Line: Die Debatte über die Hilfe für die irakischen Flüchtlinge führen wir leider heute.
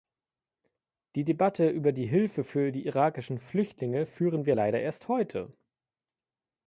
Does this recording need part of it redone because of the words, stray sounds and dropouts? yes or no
yes